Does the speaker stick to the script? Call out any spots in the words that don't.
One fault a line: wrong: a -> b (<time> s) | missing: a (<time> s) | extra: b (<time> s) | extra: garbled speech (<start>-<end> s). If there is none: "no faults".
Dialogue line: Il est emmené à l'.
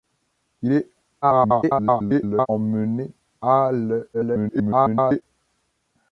extra: garbled speech (1.2-2.5 s)
extra: garbled speech (4.1-5.2 s)